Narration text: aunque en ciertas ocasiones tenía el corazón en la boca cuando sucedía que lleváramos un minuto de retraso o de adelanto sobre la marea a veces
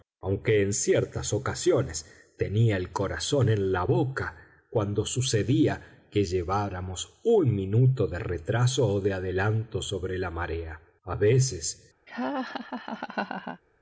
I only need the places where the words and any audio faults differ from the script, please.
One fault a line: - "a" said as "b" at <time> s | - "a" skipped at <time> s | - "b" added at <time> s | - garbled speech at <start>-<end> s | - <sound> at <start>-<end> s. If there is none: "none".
- laugh at 12.1-13.6 s